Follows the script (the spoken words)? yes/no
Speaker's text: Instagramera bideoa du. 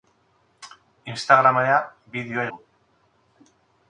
yes